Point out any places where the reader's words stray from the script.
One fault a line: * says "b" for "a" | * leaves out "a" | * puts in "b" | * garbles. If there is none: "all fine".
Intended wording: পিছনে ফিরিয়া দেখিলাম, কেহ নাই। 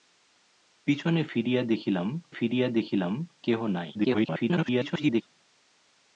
* puts in "ফিরিয়া দেখিলাম"
* garbles